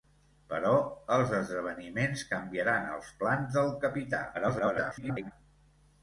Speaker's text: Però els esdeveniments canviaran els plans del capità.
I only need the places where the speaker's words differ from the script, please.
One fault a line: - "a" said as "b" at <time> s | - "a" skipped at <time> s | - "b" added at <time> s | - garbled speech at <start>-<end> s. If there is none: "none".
- garbled speech at 4.3-5.3 s